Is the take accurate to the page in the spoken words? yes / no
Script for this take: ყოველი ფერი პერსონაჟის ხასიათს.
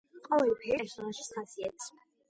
yes